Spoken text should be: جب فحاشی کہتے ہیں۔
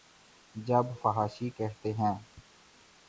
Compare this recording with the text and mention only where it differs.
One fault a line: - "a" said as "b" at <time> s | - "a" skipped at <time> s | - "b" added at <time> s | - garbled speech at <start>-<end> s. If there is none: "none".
none